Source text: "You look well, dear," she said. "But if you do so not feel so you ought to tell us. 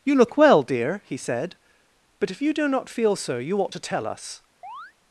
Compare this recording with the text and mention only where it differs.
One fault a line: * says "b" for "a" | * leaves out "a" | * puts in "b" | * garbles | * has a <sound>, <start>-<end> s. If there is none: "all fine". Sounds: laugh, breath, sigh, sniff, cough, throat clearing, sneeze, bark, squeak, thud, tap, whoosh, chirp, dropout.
* says "he" for "she"
* leaves out "so"
* has a chirp, 4.6-4.9 s